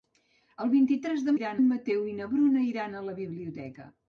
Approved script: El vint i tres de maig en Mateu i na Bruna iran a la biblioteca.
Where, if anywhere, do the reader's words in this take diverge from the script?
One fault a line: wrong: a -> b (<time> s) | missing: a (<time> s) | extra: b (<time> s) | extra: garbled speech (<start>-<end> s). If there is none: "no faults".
wrong: maig -> iran (1.4 s)